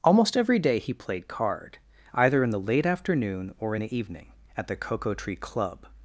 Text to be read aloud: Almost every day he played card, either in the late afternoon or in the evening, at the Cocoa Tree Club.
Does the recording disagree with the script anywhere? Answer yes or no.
no